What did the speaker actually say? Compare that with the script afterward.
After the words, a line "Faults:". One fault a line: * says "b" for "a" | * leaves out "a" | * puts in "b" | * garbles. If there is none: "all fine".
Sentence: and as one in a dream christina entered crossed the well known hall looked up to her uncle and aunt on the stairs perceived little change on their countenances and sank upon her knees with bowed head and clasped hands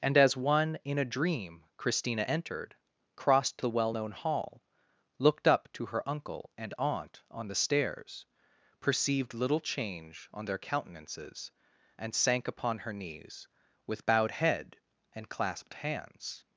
and as one in a dream christina entered crossed the well known hall looked up to her uncle and aunt on the stairs perceived little change on their countenances and sank upon her knees with bowed head and clasped hands
Faults:
all fine